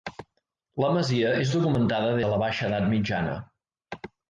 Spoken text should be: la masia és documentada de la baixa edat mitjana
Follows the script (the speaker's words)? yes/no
yes